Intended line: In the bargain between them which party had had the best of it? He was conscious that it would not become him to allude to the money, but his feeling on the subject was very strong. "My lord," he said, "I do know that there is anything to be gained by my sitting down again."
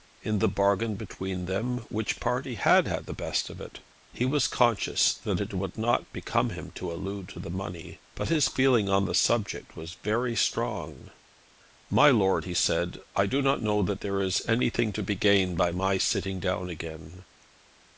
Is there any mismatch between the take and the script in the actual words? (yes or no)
yes